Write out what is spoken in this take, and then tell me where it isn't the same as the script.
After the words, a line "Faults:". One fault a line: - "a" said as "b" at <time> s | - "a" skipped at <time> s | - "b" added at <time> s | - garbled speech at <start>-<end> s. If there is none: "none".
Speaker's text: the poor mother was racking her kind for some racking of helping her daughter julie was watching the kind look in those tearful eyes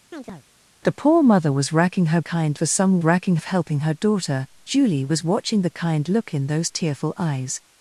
the poor mother was racking her kind for some racking of helping her daughter julie was watching the kind look in those tearful eyes
Faults:
none